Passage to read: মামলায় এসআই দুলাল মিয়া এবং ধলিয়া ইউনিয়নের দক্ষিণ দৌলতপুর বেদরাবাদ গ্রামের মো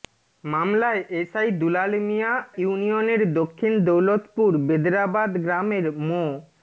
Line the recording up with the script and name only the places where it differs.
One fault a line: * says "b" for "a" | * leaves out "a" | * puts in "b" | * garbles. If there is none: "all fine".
* leaves out "এবং ধলিয়া"